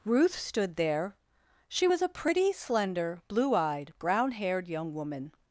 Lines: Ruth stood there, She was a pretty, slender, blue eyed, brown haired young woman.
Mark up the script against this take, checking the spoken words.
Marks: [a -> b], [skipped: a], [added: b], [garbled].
Ruth stood there, She was a pretty, slender, blue eyed, brown haired young woman.